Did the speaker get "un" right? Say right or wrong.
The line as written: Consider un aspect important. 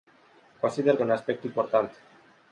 right